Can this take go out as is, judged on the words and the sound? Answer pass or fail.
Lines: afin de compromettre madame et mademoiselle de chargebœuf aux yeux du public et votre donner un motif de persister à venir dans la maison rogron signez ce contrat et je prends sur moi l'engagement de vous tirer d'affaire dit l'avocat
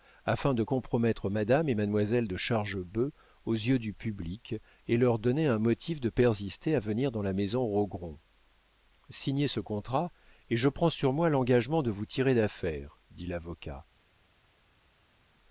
fail